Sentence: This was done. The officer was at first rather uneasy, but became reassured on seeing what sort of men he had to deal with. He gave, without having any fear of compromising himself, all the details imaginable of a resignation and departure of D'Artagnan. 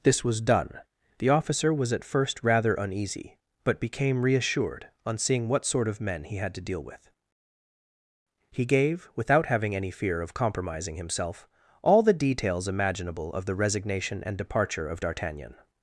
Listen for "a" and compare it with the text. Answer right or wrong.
wrong